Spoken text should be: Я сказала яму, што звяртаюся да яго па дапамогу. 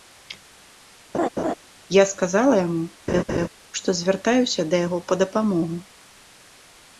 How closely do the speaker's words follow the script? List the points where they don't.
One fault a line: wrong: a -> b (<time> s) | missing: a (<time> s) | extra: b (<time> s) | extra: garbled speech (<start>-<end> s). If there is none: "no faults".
no faults